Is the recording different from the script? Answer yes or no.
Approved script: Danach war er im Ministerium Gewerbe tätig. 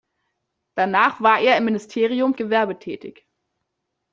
no